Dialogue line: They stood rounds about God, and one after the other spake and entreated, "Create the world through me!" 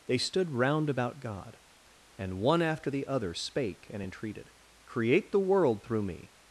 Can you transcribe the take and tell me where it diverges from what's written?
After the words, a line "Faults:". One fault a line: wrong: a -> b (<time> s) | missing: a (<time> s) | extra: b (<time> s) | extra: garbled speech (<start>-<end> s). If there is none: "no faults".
They stood round about God, and one after the other spake and entreated, "Create the world through me!"
Faults:
wrong: rounds -> round (0.5 s)